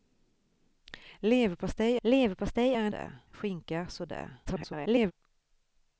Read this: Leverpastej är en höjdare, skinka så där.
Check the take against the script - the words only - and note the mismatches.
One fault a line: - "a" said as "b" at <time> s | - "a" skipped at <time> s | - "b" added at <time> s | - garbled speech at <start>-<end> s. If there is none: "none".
- "leverpastej" added at 2.0 s
- "höjdare" said as "där" at 2.9 s
- garbled speech at 4.4-5.1 s